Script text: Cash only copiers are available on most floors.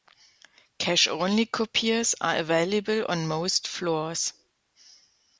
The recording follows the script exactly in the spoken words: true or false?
true